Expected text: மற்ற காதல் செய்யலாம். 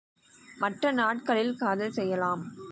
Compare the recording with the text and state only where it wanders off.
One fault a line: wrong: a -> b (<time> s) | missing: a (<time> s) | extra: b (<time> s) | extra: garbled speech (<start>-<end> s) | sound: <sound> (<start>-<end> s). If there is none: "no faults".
extra: நாட்களில் (0.9 s)